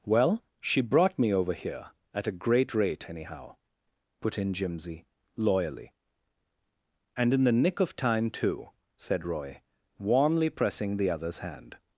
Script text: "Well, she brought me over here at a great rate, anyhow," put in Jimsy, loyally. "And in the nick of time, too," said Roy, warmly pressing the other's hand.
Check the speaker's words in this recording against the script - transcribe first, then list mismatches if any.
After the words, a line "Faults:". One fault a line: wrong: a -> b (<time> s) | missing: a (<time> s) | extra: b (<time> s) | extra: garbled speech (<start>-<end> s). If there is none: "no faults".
"Well, she brought me over here at a great rate, anyhow," put in Jimsy, loyally. "And in the nick of time, too," said Roy, warmly pressing the other's hand.
Faults:
no faults